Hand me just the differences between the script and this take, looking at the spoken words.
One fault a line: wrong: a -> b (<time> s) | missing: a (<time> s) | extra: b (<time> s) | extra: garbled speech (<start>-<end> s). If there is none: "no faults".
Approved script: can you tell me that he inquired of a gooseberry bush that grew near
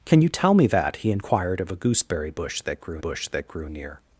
extra: bush that grew (3.0 s)